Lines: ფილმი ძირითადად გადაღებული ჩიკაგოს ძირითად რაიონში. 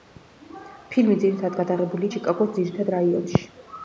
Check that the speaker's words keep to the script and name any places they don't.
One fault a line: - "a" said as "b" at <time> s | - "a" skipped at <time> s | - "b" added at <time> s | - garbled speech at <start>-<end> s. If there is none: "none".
none